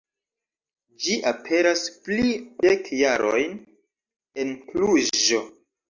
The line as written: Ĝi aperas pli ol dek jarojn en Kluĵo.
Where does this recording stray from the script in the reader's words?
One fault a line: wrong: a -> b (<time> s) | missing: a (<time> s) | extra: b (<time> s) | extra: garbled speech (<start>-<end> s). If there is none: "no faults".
missing: ol (2.3 s)